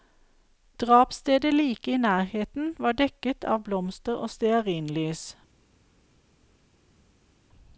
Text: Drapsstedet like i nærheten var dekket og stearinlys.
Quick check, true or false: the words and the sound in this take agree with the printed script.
false